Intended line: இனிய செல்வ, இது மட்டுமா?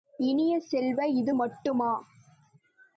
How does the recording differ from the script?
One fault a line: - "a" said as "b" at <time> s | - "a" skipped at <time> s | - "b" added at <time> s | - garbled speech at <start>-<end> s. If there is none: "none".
none